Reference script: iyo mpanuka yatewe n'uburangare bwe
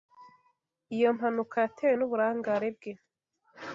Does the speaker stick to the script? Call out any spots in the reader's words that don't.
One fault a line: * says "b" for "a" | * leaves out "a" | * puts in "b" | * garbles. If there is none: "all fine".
all fine